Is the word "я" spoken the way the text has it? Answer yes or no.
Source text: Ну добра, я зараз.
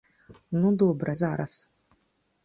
no